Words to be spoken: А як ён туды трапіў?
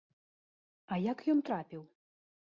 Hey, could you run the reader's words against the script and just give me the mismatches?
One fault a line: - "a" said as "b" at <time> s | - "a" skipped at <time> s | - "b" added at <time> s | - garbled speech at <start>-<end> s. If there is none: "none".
- "туды" skipped at 1.4 s